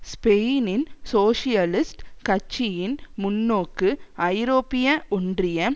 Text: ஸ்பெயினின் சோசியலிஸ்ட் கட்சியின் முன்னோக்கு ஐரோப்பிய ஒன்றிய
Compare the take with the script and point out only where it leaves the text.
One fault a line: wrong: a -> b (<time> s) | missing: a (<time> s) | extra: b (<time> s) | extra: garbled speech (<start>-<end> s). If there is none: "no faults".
no faults